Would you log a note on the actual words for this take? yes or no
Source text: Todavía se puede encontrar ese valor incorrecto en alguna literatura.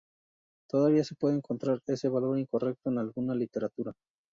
no